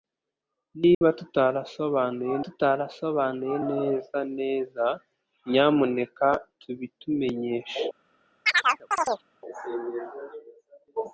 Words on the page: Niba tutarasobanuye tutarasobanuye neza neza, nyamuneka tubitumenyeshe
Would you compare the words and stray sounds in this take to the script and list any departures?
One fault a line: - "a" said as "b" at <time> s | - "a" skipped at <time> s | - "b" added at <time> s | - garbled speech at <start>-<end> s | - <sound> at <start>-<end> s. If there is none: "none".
- dropout at 0.9-1.0 s
- chirp at 8.5-9.2 s